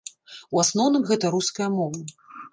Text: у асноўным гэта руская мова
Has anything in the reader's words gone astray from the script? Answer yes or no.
no